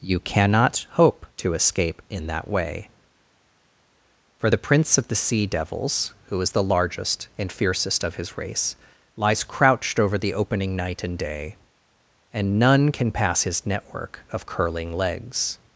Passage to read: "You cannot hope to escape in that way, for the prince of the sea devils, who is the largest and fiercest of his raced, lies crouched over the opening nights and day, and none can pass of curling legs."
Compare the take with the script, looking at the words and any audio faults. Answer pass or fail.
fail